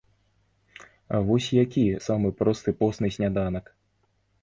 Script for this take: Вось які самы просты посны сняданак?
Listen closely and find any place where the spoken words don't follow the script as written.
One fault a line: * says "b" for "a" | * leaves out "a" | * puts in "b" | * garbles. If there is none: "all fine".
all fine